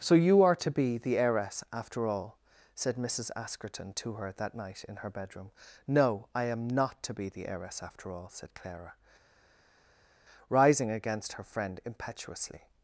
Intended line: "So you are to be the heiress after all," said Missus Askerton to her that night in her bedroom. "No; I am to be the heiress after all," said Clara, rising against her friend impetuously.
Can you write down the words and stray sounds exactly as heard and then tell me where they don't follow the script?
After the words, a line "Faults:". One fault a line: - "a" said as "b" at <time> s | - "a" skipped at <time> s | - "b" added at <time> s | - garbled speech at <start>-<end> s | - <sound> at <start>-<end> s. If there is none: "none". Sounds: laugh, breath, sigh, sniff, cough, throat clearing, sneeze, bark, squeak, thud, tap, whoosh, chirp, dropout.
"So you are to be the heiress after all," said Missus Askerton to her that night in her bedroom. "No; I am not to be the heiress after all," said Clara, rising against her friend impetuously.
Faults:
- "not" added at 6.7 s